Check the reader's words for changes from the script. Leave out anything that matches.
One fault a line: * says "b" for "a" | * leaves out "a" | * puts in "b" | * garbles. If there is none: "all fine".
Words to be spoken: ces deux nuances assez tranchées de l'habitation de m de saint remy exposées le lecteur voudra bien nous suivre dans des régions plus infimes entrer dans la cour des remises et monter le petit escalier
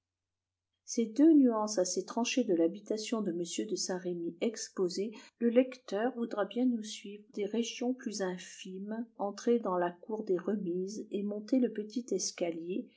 * leaves out "dans"